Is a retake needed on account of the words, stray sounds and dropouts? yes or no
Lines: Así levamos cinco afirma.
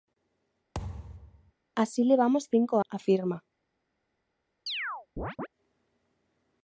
yes